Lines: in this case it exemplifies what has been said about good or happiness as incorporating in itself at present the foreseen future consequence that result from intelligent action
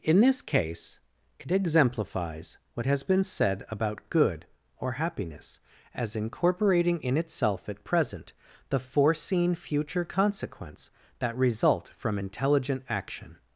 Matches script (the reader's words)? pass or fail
pass